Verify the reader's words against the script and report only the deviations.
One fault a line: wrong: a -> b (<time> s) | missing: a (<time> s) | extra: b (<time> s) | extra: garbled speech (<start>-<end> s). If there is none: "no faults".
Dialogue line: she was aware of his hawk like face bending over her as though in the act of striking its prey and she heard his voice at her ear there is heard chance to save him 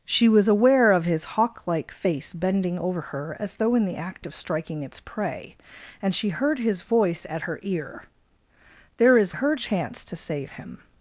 no faults